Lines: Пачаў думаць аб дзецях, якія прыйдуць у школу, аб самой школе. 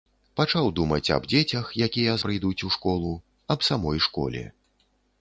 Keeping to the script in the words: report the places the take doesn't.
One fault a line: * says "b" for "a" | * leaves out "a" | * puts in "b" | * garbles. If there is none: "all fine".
all fine